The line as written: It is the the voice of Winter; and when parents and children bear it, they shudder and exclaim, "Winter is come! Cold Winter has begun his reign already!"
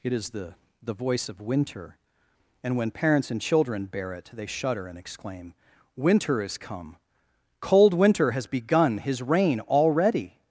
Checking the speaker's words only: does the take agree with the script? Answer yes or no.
yes